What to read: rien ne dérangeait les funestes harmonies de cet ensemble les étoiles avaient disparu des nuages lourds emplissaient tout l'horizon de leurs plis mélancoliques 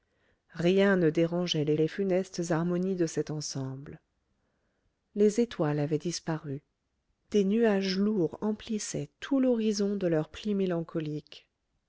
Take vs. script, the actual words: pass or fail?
fail